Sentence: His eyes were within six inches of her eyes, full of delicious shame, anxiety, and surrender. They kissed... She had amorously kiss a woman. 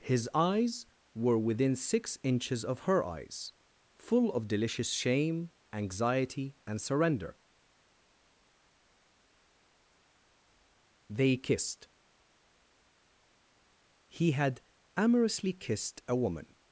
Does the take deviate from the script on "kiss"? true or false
true